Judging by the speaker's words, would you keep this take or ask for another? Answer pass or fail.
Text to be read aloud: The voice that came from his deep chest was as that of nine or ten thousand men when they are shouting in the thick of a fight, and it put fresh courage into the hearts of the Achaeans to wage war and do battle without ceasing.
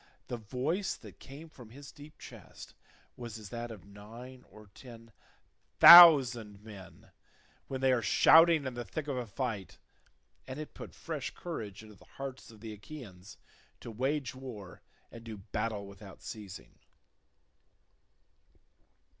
pass